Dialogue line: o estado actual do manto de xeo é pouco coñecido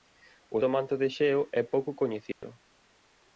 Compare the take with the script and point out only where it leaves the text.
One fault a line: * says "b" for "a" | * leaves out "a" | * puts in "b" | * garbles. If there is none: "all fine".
* leaves out "estado actual"